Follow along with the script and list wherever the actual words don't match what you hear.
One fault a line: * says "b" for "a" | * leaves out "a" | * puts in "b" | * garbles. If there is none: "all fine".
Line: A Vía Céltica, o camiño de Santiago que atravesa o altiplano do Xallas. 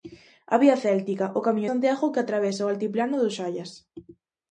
* leaves out "de"